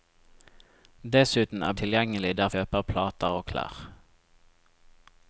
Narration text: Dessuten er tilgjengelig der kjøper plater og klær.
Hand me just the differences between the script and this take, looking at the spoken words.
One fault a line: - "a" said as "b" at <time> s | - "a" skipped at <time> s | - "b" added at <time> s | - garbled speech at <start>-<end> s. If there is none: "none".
none